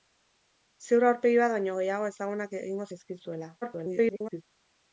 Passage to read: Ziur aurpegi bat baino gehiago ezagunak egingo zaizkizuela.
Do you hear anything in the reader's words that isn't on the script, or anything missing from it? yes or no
yes